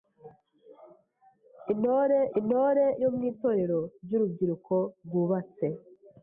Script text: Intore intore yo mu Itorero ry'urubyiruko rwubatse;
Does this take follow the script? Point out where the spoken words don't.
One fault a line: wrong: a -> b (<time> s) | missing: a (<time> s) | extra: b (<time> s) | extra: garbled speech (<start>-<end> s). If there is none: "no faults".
no faults